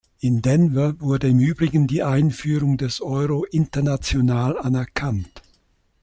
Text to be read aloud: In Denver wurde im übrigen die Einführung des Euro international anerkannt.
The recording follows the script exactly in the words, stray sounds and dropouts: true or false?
true